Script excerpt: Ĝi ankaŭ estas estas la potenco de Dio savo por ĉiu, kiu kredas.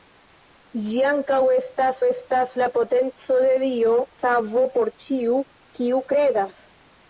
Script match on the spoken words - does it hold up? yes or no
yes